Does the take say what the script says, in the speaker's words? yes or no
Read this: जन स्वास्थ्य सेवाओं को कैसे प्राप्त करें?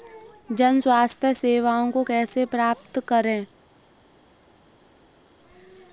yes